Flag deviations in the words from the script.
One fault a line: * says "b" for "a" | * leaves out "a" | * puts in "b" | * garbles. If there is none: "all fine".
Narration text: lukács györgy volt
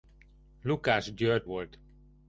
all fine